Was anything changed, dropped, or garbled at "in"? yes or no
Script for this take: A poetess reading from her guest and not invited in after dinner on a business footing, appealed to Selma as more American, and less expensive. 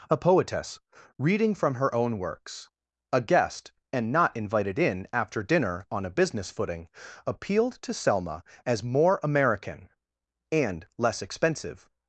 no